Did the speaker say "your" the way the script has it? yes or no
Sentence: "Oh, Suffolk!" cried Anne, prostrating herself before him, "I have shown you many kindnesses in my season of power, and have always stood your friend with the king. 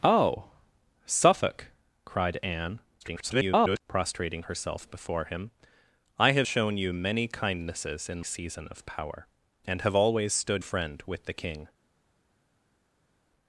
no